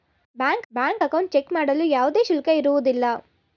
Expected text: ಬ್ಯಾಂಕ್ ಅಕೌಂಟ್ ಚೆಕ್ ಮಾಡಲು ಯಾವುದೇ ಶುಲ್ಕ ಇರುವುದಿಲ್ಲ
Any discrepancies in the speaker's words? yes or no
yes